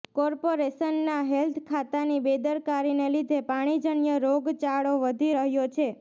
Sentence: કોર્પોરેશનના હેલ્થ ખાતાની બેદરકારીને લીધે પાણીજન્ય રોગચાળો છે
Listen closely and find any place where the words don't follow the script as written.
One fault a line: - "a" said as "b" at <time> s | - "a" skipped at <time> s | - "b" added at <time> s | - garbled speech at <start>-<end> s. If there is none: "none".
- "વધી રહ્યો" added at 5.0 s